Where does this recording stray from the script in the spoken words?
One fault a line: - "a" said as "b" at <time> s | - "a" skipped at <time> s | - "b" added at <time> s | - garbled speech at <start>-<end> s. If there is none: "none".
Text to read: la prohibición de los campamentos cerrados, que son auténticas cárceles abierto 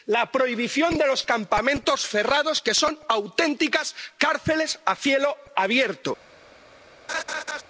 - "a cielo" added at 4.8 s